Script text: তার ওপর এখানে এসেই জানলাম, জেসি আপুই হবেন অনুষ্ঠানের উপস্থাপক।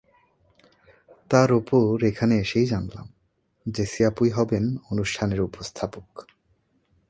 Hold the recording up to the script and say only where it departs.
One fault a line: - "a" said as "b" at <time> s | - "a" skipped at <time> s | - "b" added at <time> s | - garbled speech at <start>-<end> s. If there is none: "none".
none